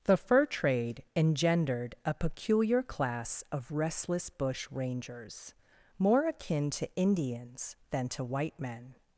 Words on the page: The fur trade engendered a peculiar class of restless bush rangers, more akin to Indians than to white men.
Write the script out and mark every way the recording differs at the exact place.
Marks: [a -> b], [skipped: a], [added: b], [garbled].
The fur trade engendered a peculiar class of restless bush rangers, more akin to Indians than to white men.